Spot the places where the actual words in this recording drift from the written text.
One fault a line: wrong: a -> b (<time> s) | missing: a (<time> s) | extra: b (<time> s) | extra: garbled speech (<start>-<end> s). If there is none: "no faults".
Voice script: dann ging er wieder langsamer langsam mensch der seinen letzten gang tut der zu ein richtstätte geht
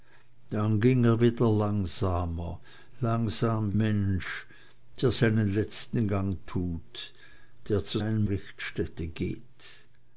no faults